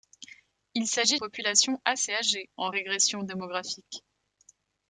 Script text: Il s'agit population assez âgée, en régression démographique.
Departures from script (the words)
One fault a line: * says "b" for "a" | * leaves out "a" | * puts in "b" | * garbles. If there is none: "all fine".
all fine